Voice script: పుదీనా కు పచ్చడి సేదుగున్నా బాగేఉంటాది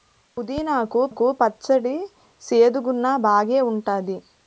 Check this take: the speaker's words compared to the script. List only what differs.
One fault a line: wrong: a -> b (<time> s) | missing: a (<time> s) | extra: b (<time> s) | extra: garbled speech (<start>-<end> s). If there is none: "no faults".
extra: కు (1.1 s)